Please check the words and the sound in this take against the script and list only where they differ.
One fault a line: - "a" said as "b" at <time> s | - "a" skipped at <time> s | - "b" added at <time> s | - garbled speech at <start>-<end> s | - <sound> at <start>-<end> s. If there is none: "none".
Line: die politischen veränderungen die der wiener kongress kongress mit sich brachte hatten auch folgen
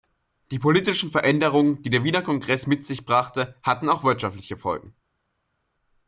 - "kongress" skipped at 2.6 s
- "wirtschaftliche" added at 4.0 s